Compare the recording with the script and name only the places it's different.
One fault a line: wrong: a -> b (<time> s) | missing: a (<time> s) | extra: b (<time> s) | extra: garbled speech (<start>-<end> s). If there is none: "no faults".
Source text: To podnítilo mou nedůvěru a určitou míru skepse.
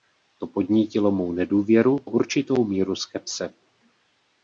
missing: a (2.0 s)